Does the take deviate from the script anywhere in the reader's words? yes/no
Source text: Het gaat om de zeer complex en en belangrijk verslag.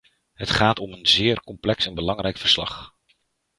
yes